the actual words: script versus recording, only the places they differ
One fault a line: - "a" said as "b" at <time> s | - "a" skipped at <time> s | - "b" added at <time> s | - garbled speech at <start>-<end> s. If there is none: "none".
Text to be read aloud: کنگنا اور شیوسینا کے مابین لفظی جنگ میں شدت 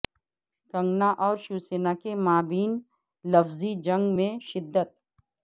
none